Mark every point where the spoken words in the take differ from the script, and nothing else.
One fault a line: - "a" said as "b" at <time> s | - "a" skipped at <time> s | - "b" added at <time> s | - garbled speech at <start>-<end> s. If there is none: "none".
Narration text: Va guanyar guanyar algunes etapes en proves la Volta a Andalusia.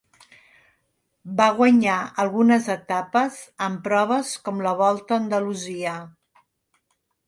- "guanyar" skipped at 2.0 s
- "com" added at 4.5 s